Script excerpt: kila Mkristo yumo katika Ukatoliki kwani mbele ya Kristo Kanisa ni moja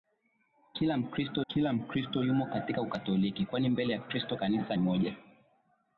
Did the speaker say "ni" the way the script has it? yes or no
no